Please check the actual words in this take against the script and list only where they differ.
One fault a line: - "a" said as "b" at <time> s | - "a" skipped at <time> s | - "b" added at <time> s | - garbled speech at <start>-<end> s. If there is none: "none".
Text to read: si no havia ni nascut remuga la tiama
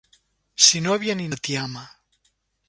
- "nascut remuga" skipped at 1.3 s